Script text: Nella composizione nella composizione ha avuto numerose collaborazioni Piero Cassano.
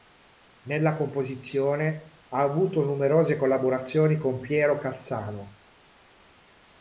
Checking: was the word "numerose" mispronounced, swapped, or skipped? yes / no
no